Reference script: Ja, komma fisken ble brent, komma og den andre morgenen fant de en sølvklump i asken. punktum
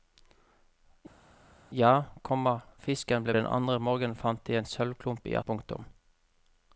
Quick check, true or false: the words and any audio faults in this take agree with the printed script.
false